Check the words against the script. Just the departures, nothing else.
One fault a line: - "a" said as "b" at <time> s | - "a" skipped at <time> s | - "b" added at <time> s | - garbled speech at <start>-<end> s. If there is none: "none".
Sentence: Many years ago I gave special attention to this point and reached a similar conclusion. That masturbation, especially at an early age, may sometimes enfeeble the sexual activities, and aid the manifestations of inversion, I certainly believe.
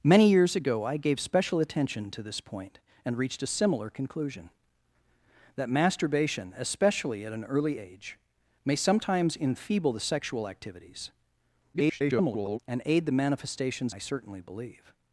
- garbled speech at 11.7-12.6 s
- "of inversion" skipped at 13.9 s